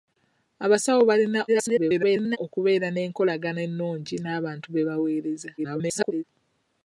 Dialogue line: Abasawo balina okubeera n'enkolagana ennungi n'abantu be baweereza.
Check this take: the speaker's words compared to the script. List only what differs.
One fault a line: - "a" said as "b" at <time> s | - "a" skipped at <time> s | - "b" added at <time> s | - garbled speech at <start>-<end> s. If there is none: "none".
- garbled speech at 1.5-2.4 s
- garbled speech at 5.6-6.2 s